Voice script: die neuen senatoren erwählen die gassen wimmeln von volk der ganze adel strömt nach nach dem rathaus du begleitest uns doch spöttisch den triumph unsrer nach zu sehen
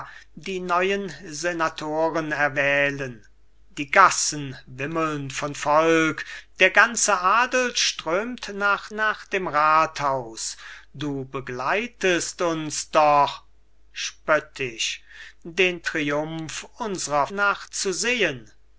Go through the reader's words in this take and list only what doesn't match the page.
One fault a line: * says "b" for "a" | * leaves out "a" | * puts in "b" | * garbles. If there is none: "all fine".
all fine